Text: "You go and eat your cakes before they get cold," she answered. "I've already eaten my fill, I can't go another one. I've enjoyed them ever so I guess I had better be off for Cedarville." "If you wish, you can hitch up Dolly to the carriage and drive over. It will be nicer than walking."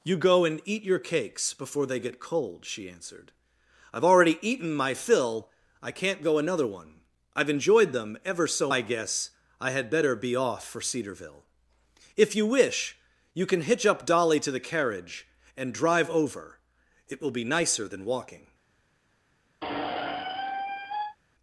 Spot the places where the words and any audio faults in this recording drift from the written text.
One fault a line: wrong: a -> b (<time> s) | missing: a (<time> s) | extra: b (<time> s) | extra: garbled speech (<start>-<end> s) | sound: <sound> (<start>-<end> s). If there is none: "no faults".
sound: squeak (19.6-21.2 s)